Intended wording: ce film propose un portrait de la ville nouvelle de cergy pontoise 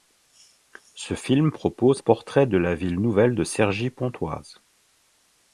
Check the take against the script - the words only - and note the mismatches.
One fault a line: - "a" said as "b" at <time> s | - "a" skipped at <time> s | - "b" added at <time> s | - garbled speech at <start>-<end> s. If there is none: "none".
- "un" skipped at 2.0 s